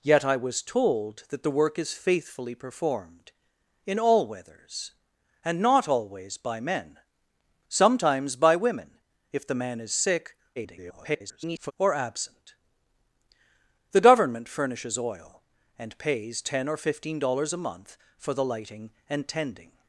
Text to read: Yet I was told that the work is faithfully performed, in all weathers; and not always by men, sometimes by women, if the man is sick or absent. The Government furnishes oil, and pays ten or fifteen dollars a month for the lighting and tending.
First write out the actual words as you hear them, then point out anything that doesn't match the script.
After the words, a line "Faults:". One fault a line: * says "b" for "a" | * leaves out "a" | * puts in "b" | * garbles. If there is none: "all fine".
Yet I was told that the work is faithfully performed, in all weathers; and not always by men, sometimes by women, if the man is sick [garbled] or absent. The Government furnishes oil, and pays ten or fifteen dollars a month for the lighting and tending.
Faults:
* garbles